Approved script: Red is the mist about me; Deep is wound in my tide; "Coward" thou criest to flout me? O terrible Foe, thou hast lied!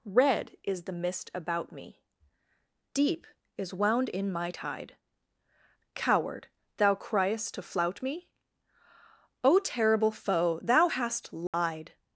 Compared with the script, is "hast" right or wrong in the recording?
right